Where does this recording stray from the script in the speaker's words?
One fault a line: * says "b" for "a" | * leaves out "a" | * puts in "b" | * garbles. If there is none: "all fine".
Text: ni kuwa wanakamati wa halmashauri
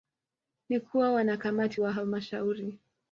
all fine